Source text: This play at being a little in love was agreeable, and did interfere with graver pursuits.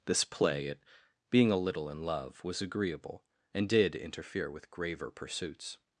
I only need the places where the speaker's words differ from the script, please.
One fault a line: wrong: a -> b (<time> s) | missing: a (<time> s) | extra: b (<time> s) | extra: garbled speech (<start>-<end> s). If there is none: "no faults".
no faults